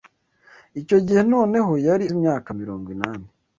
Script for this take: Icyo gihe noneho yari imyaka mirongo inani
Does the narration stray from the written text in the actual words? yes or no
no